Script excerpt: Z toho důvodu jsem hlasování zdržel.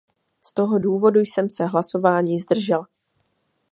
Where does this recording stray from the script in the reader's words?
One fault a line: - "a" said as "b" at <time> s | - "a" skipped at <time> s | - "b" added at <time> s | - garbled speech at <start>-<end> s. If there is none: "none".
- "se" added at 1.5 s